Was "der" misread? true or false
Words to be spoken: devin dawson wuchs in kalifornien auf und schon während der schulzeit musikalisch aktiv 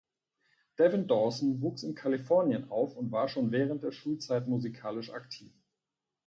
false